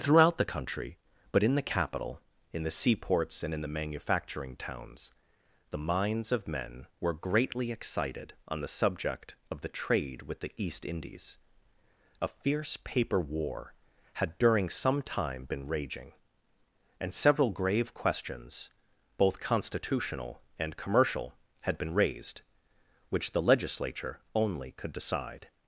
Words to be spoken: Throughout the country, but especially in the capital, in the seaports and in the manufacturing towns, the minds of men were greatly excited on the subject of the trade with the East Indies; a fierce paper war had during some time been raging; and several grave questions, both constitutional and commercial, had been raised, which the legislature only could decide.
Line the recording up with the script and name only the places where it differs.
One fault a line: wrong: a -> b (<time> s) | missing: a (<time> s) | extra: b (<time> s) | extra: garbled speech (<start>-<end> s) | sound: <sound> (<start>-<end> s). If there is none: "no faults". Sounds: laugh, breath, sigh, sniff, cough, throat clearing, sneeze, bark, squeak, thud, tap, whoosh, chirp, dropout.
missing: especially (1.4 s)